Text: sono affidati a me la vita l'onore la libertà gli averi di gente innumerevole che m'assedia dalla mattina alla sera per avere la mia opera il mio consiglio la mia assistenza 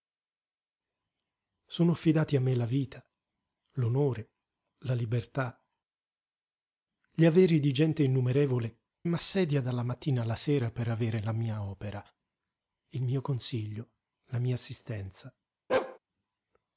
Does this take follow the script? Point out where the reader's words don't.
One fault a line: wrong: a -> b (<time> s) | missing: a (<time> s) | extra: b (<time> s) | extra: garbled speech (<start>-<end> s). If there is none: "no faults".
missing: che (8.8 s)